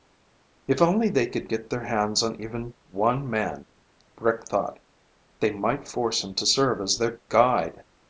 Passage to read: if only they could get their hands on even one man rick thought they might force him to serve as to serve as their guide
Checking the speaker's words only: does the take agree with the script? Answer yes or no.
no